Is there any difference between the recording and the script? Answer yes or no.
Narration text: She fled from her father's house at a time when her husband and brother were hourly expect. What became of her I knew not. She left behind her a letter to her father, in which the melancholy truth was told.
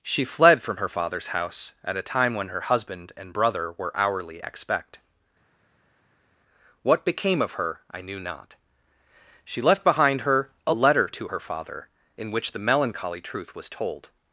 no